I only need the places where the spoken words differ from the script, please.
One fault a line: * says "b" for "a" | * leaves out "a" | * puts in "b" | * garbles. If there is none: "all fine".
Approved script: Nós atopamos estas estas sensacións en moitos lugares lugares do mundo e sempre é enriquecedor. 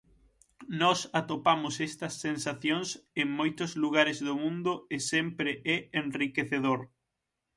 * leaves out "estas"
* leaves out "lugares"